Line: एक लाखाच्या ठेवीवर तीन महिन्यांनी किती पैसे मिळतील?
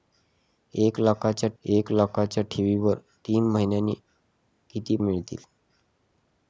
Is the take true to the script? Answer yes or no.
no